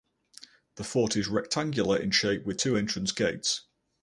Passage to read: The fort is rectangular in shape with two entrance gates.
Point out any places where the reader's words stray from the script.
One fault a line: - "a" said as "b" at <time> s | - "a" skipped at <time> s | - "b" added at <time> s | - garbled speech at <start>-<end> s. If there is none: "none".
none